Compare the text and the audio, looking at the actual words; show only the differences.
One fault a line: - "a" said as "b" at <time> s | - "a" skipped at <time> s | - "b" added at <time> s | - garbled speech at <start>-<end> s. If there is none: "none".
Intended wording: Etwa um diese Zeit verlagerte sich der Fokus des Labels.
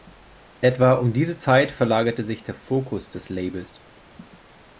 none